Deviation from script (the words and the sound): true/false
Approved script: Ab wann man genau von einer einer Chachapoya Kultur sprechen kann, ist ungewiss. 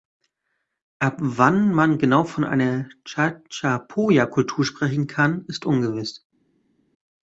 true